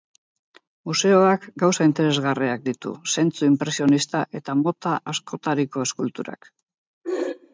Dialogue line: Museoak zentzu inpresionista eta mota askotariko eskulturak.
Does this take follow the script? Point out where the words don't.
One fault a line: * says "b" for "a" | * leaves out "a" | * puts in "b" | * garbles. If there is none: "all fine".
* puts in "gauza interesgarriak ditu"